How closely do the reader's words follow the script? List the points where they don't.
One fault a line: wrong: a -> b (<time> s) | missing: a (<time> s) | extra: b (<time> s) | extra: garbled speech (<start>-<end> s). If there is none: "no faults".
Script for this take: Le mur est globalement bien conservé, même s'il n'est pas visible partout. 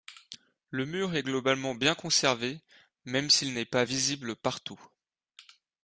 no faults